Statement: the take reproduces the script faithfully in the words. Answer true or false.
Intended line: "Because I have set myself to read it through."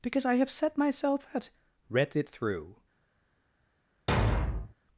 false